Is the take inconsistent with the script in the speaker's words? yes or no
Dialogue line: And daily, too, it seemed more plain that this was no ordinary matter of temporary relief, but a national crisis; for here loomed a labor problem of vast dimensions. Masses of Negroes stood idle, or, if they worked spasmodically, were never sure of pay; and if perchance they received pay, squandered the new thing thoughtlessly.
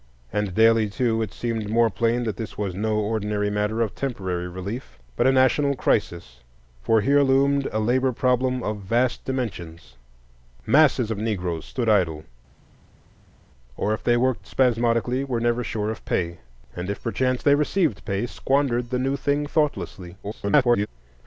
yes